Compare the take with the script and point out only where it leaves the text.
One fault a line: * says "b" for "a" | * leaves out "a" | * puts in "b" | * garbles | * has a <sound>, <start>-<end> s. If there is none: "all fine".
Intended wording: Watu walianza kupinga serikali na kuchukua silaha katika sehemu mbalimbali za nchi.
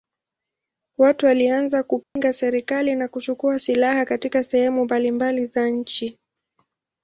* has a dropout, 2.0-2.2 s